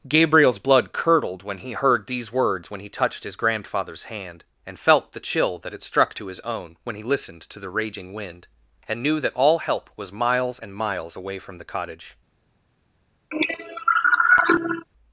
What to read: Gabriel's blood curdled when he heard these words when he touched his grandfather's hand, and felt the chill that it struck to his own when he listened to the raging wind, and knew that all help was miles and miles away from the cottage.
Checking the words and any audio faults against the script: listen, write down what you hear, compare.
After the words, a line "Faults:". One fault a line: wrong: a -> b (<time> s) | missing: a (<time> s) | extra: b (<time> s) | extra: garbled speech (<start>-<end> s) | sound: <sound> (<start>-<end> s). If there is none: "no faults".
Gabriel's blood curdled when he heard these words when he touched his grandfather's hand, and felt the chill that it struck to his own when he listened to the raging wind, and knew that all help was miles and miles away from the cottage.
Faults:
sound: cough (13.3-14.9 s)